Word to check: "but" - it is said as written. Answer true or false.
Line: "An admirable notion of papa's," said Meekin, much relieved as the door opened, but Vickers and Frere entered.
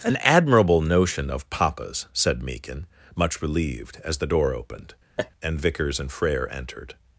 false